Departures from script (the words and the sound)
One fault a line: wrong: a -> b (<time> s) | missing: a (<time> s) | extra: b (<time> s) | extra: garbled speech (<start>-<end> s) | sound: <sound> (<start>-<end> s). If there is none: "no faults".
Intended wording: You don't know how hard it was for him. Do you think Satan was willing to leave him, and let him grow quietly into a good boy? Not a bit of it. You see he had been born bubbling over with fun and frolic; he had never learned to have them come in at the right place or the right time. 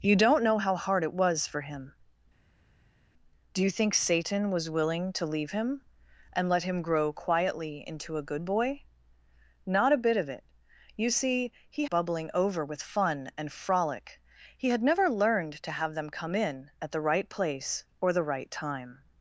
missing: had been born (11.9 s)